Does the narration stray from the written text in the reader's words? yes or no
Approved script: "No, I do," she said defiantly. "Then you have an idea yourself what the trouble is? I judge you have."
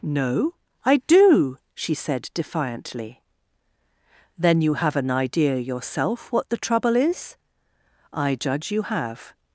no